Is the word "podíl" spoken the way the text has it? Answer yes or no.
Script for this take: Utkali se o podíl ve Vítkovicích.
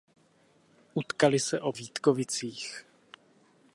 no